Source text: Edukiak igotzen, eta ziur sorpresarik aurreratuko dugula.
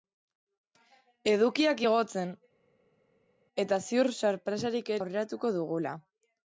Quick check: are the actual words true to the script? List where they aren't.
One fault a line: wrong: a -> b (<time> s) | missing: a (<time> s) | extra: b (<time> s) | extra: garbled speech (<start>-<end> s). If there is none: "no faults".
no faults